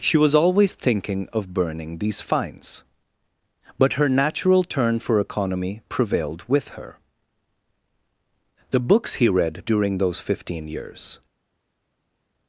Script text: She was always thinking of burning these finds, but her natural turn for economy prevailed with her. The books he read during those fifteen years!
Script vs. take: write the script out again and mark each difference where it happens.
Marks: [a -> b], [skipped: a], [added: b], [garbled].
She was always thinking of burning these finds, but her natural turn for economy prevailed with her. The books he read during those fifteen years!